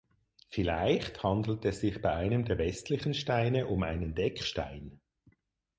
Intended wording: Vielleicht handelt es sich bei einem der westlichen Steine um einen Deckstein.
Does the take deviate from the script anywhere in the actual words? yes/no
no